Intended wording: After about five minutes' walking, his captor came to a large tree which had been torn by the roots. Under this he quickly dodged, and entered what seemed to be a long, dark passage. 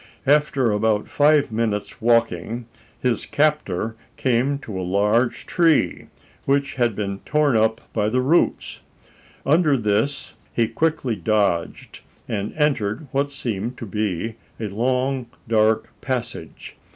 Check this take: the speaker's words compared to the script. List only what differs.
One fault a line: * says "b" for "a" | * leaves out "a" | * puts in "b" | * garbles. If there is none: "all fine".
* puts in "up"